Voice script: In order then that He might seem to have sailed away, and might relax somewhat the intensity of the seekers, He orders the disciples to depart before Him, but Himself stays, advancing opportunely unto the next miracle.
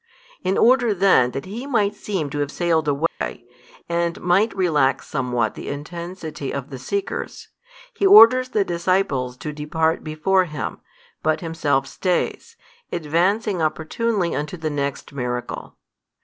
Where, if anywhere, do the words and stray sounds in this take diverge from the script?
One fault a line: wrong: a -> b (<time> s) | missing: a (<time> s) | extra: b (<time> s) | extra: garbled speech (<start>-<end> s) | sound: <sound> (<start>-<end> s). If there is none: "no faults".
sound: dropout (3.1-3.2 s)